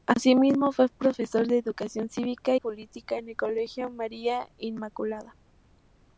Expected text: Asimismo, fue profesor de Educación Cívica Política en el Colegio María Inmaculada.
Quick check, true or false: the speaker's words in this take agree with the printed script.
true